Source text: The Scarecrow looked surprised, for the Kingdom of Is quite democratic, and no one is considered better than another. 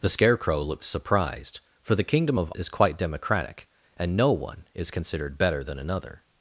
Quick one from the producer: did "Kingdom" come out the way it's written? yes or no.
yes